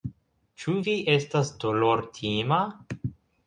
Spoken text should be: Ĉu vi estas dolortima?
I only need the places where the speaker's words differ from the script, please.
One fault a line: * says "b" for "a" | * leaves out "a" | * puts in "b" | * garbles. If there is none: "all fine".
all fine